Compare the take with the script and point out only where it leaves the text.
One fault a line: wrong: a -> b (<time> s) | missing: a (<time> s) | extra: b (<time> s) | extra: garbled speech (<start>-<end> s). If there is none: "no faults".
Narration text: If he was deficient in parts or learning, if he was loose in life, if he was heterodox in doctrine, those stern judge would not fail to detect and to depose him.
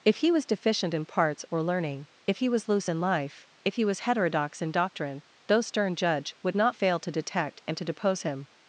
no faults